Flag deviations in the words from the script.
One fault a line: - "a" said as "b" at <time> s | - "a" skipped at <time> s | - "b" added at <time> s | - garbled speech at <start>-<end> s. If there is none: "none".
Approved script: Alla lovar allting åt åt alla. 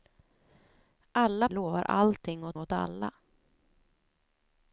none